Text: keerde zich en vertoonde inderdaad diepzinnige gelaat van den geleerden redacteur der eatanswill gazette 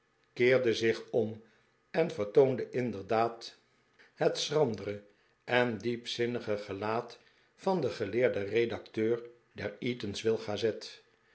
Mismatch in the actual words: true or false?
true